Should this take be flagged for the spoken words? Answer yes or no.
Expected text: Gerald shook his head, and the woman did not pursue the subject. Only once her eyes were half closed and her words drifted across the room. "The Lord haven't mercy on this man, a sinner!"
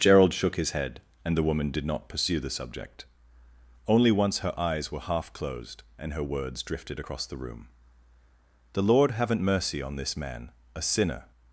no